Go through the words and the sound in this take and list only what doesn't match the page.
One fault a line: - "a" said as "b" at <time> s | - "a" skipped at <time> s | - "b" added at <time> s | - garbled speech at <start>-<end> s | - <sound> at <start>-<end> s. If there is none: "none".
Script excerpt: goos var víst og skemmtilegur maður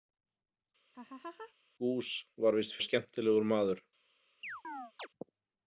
- laugh at 0.9-1.5 s
- chirp at 4.4-5.1 s